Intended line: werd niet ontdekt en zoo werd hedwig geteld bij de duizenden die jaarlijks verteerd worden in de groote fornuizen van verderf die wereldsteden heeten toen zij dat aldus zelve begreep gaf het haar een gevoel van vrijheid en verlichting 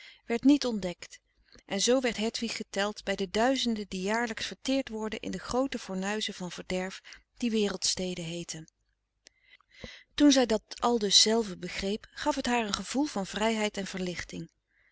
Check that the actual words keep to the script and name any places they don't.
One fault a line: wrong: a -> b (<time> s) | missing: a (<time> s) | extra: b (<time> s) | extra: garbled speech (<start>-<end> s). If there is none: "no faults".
no faults